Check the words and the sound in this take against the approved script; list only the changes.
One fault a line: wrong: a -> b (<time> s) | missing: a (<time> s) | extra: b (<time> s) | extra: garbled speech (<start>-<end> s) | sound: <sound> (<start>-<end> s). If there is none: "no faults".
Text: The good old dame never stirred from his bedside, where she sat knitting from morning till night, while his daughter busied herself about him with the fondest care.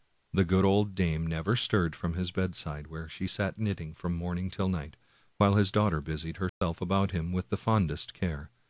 sound: dropout (6.5-6.6 s)